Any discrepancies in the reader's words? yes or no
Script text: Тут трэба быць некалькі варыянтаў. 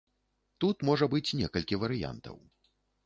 yes